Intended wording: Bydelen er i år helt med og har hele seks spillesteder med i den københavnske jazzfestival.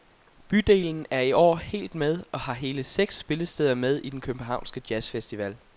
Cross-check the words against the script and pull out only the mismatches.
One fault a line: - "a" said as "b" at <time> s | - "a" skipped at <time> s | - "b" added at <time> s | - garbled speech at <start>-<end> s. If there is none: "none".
none